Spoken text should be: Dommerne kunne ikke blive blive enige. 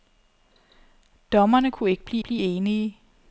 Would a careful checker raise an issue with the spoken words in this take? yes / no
no